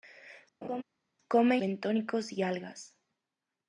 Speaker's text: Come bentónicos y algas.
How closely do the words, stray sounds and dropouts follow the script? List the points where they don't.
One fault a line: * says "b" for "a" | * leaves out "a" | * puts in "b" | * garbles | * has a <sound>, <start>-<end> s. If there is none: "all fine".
* has a laugh, 0.6-0.8 s